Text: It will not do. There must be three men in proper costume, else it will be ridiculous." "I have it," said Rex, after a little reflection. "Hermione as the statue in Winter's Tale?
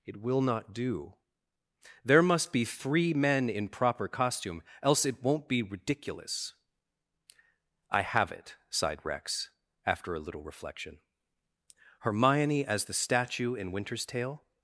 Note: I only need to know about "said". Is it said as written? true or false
false